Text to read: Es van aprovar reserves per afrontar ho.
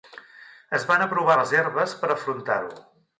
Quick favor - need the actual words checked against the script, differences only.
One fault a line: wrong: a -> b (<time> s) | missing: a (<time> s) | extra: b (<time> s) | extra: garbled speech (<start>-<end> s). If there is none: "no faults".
no faults